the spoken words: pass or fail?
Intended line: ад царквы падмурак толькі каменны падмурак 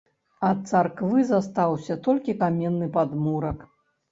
fail